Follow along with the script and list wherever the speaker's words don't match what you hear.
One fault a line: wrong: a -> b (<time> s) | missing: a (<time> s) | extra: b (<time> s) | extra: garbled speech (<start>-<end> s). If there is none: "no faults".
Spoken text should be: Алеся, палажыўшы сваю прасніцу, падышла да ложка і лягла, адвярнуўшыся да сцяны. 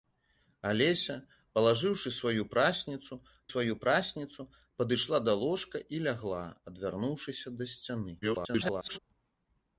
extra: сваю прасніцу (3.5 s)
extra: garbled speech (8.2-9.0 s)